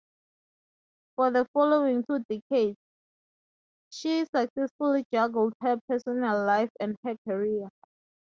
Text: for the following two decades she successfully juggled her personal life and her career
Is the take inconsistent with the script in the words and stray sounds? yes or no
no